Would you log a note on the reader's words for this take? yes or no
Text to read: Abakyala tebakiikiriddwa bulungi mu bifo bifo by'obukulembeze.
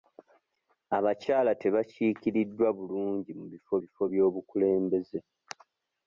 no